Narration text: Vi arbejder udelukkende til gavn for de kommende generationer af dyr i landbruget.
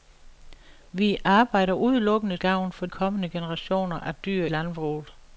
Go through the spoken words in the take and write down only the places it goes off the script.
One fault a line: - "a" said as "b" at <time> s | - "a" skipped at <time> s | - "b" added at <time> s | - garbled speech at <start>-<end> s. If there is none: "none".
- "til" skipped at 2.4 s
- "de" skipped at 2.9 s
- "i" skipped at 4.5 s